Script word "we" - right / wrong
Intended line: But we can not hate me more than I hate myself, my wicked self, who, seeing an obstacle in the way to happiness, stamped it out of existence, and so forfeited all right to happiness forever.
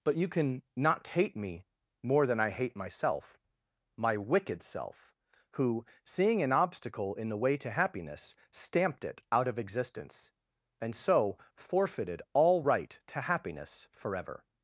wrong